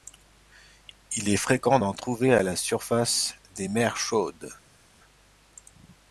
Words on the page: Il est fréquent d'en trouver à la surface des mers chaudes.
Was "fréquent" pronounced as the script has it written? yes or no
yes